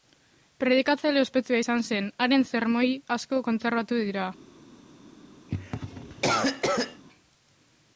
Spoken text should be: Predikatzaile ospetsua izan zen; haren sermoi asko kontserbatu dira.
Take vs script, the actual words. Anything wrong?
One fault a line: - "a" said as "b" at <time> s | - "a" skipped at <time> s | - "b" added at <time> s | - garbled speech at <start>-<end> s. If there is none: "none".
none